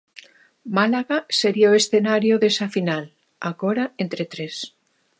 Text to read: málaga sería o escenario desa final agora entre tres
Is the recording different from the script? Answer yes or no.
no